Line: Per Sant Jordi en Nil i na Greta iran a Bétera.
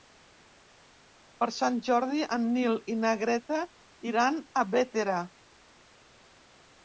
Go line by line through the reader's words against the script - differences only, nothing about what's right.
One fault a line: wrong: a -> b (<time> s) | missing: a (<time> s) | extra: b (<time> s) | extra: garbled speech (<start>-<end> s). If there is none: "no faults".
no faults